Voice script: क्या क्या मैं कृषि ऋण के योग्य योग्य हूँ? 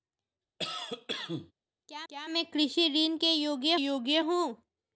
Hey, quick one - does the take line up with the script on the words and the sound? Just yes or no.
no